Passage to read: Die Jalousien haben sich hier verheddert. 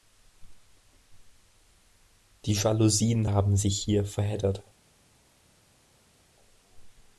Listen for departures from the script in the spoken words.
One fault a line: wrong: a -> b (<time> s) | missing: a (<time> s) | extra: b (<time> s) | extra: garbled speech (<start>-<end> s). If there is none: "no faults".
no faults